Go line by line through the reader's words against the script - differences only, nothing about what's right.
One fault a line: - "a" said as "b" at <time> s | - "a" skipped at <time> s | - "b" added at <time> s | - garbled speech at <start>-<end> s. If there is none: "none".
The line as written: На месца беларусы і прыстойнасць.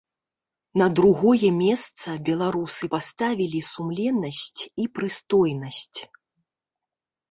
- "другое" added at 1.0 s
- "паставілі сумленнасць" added at 2.9 s